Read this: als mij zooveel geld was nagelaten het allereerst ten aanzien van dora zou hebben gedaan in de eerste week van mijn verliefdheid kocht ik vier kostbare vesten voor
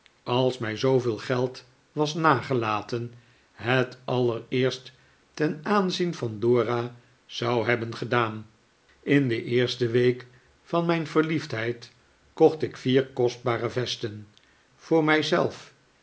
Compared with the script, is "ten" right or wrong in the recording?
right